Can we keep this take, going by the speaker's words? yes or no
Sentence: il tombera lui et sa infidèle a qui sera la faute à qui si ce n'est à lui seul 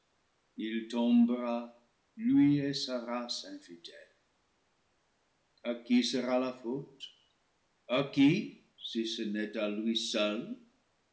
no